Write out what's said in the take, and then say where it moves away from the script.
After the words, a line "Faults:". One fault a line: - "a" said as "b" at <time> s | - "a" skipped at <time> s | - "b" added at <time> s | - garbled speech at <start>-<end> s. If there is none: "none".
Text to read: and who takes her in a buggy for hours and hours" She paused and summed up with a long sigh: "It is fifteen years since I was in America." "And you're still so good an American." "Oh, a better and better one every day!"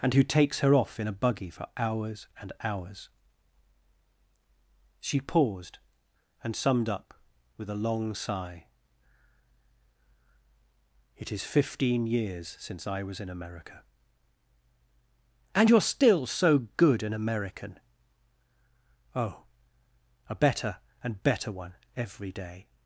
and who takes her off in a buggy for hours and hours" She paused and summed up with a long sigh: "It is fifteen years since I was in America." "And you're still so good an American." "Oh, a better and better one every day!"
Faults:
- "off" added at 0.7 s